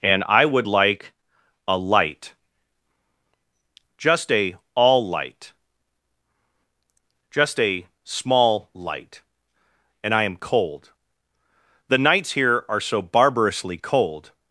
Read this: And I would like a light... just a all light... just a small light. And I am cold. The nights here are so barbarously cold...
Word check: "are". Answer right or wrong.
right